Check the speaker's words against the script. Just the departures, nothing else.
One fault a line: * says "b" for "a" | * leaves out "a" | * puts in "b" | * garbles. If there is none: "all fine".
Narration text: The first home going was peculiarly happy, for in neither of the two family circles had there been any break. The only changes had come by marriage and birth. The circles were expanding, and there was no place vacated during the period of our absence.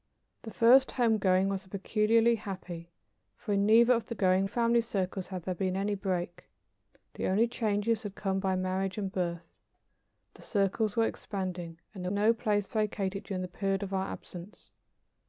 * says "going" for "two"
* leaves out "was"